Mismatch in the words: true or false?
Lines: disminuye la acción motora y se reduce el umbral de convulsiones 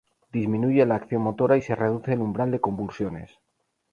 false